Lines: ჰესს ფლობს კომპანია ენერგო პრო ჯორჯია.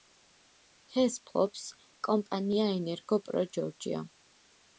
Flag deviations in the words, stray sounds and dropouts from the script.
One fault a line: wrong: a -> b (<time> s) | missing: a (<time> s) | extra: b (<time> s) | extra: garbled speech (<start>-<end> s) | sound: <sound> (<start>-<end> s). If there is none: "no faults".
no faults